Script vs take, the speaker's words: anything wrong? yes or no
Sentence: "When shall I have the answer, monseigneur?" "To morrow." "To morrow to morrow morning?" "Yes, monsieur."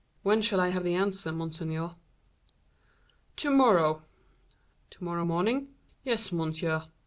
yes